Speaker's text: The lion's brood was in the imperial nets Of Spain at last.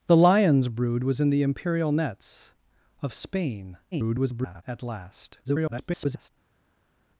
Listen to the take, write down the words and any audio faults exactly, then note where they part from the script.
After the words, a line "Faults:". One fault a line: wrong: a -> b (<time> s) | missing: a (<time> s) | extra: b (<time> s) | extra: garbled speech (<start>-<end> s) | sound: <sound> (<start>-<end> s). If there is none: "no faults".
The lion's brood was in the imperial nets Of Spain [garbled] at last. [garbled]
Faults:
extra: garbled speech (3.9-4.6 s)
extra: garbled speech (5.4-6.3 s)